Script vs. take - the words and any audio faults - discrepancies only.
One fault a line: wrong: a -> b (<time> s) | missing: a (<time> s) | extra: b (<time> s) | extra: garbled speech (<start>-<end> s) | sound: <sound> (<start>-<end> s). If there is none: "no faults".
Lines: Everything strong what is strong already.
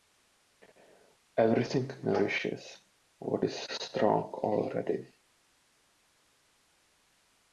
wrong: strong -> nourishes (2.0 s)